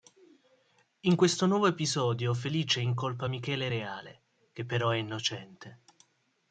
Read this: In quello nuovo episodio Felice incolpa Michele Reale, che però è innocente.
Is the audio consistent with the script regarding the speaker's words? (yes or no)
no